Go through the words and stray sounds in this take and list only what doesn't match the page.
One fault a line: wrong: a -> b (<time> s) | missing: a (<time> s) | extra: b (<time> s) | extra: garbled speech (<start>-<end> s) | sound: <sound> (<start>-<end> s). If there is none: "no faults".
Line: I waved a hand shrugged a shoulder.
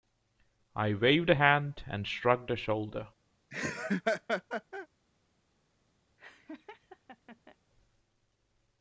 extra: and (1.9 s)
sound: laugh (3.5-4.9 s)
sound: laugh (6.2-7.6 s)